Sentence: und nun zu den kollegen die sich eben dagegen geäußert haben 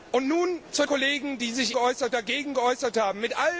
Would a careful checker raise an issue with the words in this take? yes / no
yes